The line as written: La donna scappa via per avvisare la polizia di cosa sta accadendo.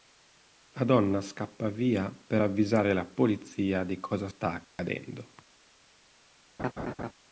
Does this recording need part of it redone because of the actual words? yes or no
no